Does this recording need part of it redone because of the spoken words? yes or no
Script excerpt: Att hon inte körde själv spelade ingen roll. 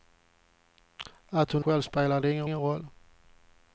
yes